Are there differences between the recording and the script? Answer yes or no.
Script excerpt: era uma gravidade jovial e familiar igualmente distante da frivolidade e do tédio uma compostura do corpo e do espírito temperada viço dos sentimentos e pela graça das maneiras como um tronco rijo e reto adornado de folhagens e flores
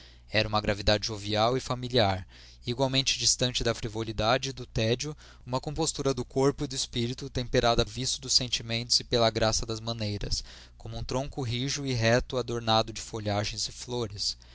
no